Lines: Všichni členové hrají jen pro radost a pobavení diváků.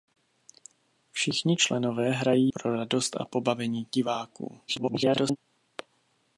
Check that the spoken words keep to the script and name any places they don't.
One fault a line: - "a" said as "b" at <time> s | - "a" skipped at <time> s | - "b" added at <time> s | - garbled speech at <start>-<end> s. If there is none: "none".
- "jen" skipped at 2.5 s
- garbled speech at 4.7-5.4 s